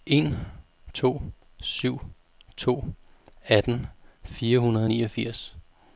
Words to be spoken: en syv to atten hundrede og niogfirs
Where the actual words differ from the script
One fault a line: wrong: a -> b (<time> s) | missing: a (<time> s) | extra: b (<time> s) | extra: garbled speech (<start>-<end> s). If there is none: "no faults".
extra: to (0.9 s)
extra: fire (4.2 s)